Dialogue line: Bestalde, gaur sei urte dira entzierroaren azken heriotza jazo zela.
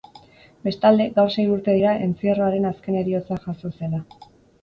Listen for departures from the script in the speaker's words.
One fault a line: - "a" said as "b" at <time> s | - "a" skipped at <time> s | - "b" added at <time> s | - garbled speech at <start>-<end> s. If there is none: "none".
none